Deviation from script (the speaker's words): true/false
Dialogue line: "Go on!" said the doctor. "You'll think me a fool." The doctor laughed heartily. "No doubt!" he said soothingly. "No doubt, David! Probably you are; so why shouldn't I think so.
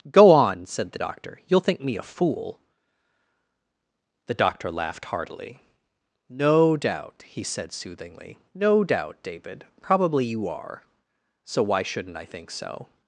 false